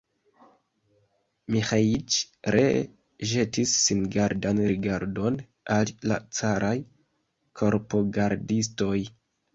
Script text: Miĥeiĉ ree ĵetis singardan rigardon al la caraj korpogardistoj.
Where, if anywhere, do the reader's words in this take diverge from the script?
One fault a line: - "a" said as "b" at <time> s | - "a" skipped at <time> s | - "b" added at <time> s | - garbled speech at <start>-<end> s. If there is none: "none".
none